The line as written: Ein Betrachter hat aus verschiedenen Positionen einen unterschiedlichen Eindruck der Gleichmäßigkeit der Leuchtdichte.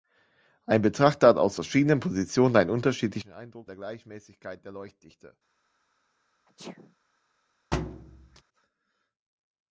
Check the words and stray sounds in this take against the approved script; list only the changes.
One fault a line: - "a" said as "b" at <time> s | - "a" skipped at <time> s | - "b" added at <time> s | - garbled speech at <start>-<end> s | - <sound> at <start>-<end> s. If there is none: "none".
- sneeze at 6.5-7.0 s
- thud at 7.7-8.4 s